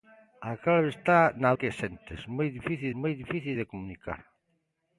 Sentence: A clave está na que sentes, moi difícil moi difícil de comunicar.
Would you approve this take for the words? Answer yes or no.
yes